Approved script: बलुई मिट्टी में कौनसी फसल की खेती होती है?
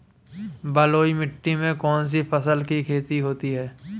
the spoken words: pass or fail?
pass